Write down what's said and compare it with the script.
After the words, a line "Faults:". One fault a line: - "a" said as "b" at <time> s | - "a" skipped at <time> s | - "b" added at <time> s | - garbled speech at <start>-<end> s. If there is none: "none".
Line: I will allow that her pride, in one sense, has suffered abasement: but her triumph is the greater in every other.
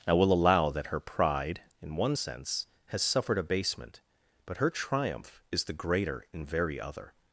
I will allow that her pride, in one sense, has suffered abasement: but her triumph is the greater in very other.
Faults:
- "every" said as "very" at 6.4 s